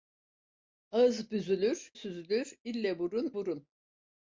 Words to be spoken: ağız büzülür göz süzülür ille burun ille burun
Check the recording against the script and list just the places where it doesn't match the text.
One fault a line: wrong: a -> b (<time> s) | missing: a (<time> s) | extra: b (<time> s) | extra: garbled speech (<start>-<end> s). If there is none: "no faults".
missing: göz (1.9 s)
missing: ille (3.3 s)